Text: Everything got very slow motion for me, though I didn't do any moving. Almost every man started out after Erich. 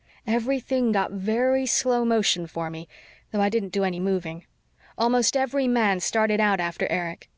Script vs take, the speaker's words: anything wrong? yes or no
no